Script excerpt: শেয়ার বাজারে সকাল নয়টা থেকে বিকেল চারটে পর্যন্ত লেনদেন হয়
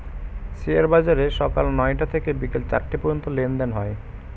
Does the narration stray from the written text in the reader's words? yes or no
no